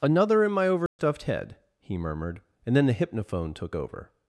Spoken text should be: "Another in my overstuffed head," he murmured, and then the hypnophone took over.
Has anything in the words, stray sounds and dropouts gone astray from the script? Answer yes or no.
yes